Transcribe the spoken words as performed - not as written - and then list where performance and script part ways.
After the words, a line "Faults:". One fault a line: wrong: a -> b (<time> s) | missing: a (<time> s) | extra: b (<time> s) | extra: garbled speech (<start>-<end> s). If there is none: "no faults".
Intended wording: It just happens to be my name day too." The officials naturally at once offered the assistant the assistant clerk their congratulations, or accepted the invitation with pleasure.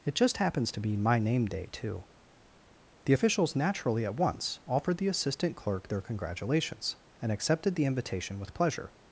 It just happens to be my name day too." The officials naturally at once offered the assistant clerk their congratulations, and accepted the invitation with pleasure.
Faults:
missing: the assistant (5.6 s)
wrong: or -> and (7.2 s)